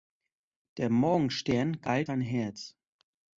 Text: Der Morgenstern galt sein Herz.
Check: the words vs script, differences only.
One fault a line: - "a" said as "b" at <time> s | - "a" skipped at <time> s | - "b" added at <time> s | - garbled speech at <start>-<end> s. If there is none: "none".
none